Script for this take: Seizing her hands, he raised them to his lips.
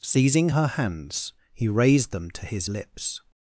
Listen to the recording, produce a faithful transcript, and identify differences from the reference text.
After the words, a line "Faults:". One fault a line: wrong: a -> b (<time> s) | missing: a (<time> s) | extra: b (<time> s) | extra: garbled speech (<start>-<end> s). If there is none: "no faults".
Seizing her hands, he raised them to his lips.
Faults:
no faults